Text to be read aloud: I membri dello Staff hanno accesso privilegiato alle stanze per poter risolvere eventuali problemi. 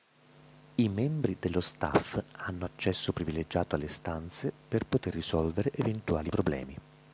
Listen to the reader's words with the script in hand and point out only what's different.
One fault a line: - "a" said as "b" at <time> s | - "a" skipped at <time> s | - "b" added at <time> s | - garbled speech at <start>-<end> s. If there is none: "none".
none